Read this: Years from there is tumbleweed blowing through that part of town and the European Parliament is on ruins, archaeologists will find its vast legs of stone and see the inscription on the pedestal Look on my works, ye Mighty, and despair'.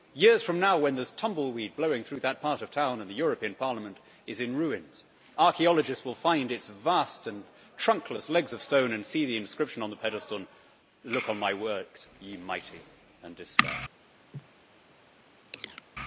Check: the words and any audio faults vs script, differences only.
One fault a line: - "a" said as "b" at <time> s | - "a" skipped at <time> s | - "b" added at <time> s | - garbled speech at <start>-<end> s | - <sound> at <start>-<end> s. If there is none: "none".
- "now when" added at 0.6 s
- "on" said as "in" at 4.4 s
- "and trunkless" added at 7.3 s
- sneeze at 14.3-14.5 s
- chirp at 15.5-15.8 s